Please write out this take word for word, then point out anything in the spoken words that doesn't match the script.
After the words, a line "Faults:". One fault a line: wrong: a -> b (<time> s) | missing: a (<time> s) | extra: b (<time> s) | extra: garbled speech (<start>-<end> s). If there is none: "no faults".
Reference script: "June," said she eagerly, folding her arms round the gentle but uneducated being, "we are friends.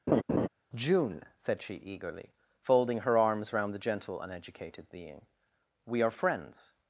"June," said she eagerly, folding her arms round the gentle uneducated being, "we are friends.
Faults:
missing: but (4.2 s)